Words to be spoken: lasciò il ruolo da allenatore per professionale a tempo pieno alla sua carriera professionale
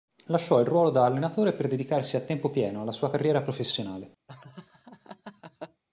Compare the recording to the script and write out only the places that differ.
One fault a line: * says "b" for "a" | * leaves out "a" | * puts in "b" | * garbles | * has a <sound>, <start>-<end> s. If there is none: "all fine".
* says "dedicarsi" for "professionale"
* has a laugh, 4.3-5.8 s